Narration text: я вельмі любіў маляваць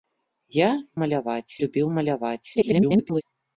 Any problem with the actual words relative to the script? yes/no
yes